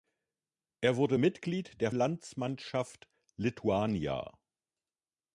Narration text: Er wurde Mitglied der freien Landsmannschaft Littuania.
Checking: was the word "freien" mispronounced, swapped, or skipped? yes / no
yes